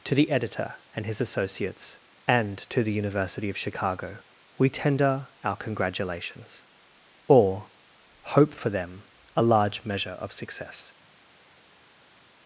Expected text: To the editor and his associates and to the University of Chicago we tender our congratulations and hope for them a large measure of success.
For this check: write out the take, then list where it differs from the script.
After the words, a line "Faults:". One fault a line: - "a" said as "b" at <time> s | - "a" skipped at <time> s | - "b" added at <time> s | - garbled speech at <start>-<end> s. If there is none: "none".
To the editor and his associates and to the University of Chicago we tender our congratulations or hope for them a large measure of success.
Faults:
- "and" said as "or" at 7.3 s